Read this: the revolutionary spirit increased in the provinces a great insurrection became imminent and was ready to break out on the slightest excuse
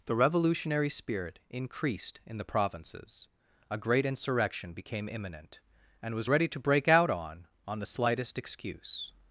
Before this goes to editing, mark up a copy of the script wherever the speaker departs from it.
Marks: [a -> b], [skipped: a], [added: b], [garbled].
the revolutionary spirit increased in the provinces a great insurrection became imminent and was ready to break out on [added: on] the slightest excuse